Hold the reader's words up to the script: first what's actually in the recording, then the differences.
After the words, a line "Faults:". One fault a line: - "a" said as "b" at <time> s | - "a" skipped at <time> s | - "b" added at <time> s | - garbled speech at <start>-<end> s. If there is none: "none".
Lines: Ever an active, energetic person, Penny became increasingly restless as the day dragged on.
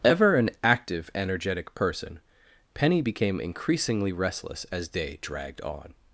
Ever an active, energetic person, Penny became increasingly restless as day dragged on.
Faults:
- "the" skipped at 4.9 s